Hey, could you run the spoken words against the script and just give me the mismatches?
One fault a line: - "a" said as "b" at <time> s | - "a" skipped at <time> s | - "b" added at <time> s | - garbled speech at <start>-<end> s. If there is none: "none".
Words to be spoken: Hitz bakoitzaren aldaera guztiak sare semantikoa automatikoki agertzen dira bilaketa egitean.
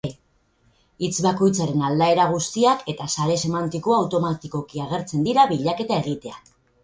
- "eta" added at 3.0 s